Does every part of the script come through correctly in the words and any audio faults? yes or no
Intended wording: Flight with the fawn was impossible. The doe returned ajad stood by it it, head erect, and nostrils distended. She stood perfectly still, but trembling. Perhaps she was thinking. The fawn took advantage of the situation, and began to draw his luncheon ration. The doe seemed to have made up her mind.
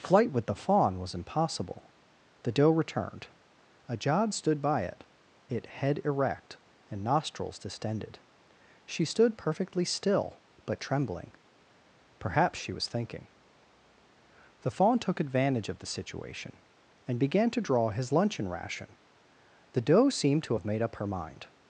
yes